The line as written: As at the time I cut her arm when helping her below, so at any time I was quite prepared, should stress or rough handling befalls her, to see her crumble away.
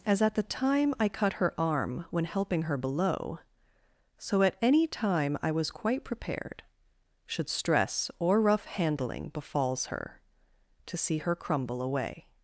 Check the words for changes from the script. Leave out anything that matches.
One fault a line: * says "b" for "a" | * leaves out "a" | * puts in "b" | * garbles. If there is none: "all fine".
all fine